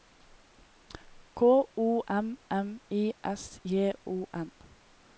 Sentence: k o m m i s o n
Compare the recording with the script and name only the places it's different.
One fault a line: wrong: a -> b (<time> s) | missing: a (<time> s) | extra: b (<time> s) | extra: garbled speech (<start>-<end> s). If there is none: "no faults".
extra: j (3.6 s)